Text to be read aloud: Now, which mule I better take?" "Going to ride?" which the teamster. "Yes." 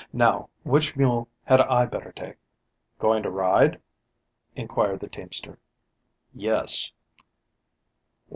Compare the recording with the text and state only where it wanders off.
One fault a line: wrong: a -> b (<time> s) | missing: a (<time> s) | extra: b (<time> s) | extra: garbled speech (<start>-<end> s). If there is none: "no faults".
extra: had (1.4 s)
wrong: which -> inquired (4.5 s)